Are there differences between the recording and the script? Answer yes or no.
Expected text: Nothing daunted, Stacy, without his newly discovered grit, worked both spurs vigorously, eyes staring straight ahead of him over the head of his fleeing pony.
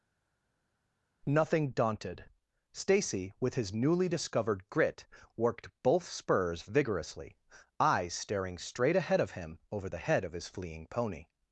yes